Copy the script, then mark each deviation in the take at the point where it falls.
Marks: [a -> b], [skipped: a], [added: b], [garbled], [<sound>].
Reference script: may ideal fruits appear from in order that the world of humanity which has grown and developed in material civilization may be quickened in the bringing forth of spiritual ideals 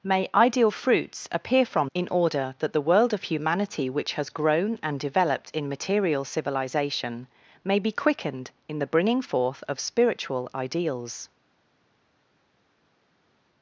may ideal fruits appear from in order that the world of humanity which has grown and developed in material civilization may be quickened in the bringing forth of spiritual ideals